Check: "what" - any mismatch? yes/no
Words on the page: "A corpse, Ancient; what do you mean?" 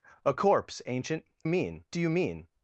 yes